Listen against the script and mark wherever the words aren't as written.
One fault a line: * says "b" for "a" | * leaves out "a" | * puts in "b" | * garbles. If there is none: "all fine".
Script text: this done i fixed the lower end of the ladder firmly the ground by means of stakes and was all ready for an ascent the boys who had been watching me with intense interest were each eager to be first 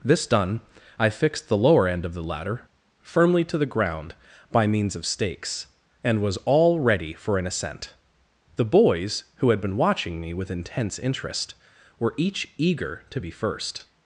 * puts in "to"